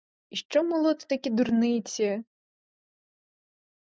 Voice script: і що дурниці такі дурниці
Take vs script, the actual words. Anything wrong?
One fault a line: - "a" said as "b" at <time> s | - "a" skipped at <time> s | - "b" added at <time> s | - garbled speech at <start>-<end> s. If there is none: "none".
- "дурниці" said as "молоти" at 0.6 s